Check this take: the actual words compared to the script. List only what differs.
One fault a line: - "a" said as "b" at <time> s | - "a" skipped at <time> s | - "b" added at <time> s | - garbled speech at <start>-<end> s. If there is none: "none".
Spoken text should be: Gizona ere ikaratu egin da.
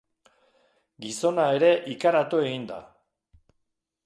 none